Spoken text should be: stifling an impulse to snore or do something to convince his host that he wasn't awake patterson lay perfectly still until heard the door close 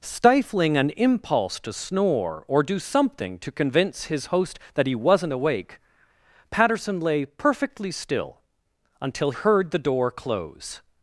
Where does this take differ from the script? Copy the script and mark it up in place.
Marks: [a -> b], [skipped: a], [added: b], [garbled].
stifling an impulse to snore or do something to convince his host that he wasn't awake patterson lay perfectly still until heard the door close